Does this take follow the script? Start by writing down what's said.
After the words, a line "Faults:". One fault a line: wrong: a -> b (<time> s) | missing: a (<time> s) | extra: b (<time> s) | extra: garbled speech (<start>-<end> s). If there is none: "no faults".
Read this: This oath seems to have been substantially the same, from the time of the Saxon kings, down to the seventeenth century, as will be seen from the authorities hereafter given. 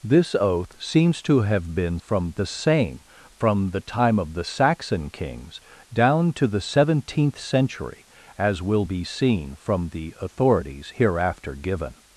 This oath seems to have been from the same, from the time of the Saxon kings, down to the seventeenth century, as will be seen from the authorities hereafter given.
Faults:
wrong: substantially -> from (2.0 s)